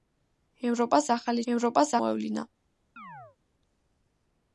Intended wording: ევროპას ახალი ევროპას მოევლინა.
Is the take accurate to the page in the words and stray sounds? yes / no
no